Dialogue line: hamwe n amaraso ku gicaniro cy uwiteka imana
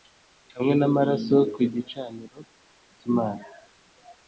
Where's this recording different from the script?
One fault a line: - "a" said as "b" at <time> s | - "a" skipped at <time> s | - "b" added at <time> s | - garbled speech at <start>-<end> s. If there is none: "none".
- "uwiteka" skipped at 3.1 s